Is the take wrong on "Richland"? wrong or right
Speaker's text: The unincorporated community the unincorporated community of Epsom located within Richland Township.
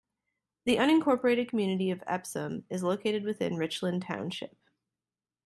right